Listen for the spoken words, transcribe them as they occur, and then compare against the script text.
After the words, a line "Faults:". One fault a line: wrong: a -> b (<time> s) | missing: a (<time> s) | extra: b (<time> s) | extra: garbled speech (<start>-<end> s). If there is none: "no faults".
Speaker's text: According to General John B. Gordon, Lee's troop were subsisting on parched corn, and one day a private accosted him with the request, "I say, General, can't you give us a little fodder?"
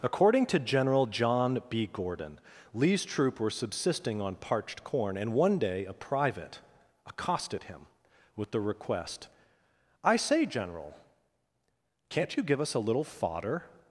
According to General John B. Gordon, Lee's troop were subsisting on parched corn, and one day a private accosted him with the request, "I say, General, can't you give us a little fodder?"
Faults:
no faults